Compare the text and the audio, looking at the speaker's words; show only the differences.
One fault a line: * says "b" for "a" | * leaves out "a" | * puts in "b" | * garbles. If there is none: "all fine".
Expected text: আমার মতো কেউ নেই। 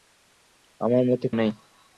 * leaves out "কেউ"